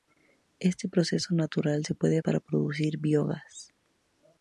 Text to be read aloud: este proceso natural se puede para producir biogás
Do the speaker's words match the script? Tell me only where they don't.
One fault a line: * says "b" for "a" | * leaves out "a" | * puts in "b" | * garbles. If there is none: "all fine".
all fine